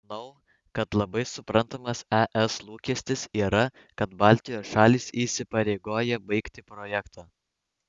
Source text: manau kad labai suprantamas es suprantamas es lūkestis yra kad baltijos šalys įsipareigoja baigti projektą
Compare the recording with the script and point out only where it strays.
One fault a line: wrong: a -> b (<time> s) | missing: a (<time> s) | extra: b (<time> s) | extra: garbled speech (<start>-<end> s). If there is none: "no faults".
missing: suprantamas es (2.5 s)